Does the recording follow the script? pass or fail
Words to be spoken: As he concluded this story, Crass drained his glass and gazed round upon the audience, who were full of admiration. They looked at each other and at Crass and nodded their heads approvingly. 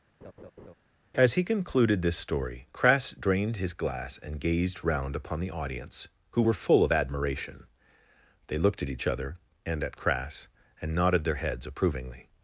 pass